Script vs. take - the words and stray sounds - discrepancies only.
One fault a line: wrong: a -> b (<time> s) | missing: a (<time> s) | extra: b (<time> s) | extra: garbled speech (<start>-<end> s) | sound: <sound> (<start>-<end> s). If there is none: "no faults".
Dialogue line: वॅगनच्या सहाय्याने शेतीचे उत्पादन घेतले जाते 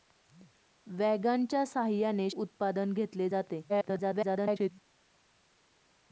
missing: शेतीचे (2.3 s)
extra: garbled speech (3.7-4.7 s)